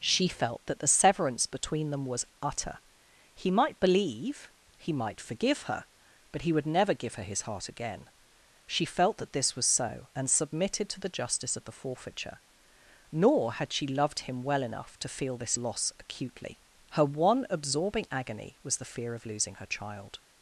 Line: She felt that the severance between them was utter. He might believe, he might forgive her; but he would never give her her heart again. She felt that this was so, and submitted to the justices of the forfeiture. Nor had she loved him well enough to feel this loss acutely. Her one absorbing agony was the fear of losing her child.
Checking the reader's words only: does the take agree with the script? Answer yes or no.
no